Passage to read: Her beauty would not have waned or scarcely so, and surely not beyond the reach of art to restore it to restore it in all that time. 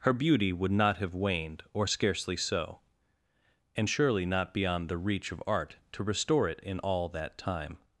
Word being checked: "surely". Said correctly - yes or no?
yes